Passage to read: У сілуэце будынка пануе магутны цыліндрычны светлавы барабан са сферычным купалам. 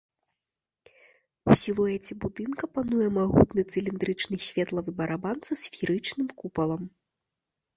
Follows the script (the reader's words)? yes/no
yes